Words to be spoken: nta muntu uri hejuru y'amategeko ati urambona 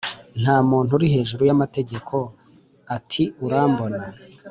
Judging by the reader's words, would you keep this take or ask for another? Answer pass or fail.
pass